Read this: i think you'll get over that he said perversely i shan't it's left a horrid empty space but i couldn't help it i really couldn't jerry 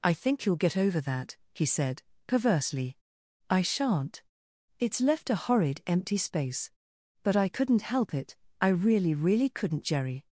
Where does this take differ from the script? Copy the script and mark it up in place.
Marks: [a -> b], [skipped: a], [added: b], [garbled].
i think you'll get over that he said perversely i shan't it's left a horrid empty space but i couldn't help it i really [added: really] couldn't jerry